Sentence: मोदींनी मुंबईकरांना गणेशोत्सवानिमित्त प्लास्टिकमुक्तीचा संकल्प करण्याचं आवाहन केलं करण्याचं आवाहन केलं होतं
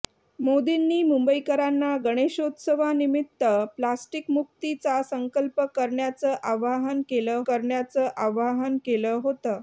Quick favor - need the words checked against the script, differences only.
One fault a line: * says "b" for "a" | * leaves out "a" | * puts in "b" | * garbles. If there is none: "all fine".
all fine